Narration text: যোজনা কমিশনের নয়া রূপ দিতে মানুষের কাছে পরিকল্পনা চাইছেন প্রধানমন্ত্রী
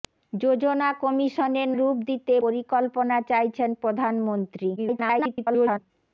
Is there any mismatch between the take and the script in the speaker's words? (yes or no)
yes